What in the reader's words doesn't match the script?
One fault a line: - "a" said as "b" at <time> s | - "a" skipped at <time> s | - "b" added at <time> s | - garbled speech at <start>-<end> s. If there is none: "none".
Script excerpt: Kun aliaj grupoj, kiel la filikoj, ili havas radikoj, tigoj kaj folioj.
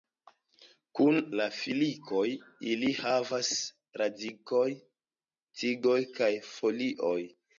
- "aliaj grupoj kiel" skipped at 1.2 s